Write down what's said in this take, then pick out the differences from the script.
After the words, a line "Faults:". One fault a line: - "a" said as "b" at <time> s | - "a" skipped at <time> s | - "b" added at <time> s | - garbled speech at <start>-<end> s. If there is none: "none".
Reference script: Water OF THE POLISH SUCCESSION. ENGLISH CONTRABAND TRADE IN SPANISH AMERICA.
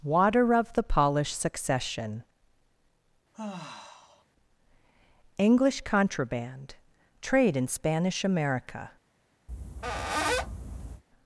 Water OF THE POLISH SUCCESSION. ENGLISH CONTRABAND TRADE IN SPANISH AMERICA.
Faults:
none